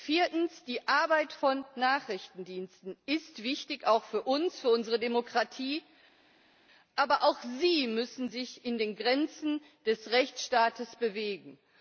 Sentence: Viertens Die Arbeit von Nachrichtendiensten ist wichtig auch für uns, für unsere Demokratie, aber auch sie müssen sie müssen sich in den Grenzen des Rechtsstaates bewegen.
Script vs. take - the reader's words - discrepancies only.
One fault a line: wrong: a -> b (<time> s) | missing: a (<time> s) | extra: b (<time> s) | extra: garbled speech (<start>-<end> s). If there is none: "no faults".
missing: sie müssen (8.3 s)